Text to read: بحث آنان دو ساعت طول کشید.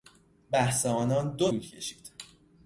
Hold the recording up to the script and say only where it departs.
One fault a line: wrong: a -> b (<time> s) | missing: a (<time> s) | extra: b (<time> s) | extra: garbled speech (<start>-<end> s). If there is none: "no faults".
missing: ساعت (1.5 s)